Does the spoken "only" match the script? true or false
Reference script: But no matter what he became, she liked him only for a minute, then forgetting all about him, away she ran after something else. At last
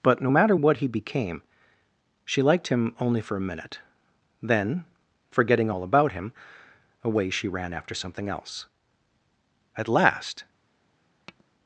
true